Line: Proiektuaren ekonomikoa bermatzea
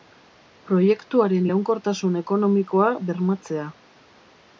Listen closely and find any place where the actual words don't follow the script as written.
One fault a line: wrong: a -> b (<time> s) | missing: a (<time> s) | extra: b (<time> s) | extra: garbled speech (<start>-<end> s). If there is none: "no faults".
extra: iraunkortasun (1.4 s)